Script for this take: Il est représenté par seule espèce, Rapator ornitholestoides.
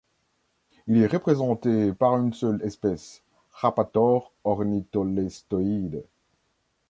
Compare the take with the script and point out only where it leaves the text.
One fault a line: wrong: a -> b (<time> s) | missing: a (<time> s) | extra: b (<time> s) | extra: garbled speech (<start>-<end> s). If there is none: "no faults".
extra: une (2.2 s)